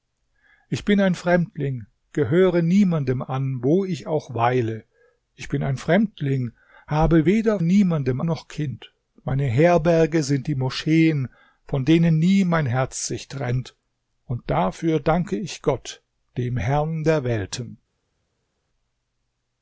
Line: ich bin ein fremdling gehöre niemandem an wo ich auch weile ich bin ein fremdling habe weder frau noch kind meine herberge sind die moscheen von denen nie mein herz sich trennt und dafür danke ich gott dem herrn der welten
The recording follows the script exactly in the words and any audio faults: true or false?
false